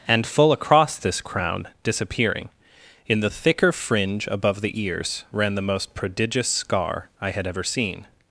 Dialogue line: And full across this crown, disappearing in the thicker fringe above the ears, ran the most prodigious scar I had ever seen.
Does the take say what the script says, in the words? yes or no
yes